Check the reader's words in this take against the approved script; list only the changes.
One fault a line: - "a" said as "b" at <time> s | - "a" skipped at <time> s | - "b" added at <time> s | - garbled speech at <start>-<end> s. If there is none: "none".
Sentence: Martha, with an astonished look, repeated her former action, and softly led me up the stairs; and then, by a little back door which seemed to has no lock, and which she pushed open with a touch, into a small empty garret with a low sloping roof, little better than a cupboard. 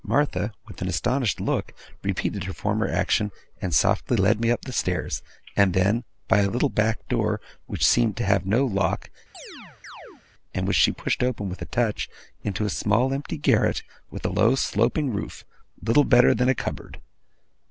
- "has" said as "have" at 8.2 s